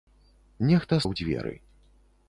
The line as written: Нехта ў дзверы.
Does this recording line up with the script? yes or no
yes